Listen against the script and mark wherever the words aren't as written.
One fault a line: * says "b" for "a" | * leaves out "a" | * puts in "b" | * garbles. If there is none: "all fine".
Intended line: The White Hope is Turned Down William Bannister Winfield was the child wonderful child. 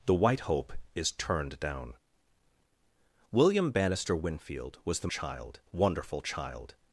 all fine